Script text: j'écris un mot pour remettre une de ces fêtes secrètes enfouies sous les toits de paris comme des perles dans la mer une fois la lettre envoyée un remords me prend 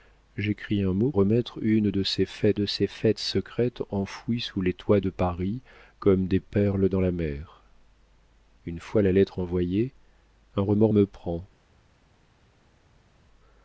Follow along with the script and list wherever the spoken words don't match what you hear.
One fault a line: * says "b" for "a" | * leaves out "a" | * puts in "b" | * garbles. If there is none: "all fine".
* leaves out "pour"
* puts in "de ces fêtes"